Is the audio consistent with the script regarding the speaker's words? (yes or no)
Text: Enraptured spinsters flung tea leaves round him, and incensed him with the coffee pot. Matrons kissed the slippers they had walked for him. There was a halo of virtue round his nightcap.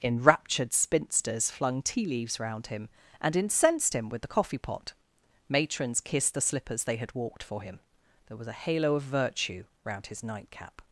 yes